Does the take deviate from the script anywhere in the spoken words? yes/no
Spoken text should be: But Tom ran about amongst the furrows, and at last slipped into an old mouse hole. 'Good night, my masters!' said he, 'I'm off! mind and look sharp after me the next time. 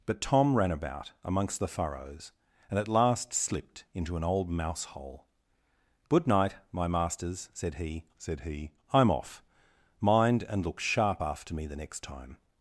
yes